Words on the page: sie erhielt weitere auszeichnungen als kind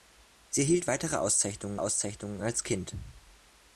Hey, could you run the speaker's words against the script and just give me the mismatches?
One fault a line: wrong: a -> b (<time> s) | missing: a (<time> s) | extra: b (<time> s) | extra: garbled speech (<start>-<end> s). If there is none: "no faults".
extra: auszeichnungen (1.8 s)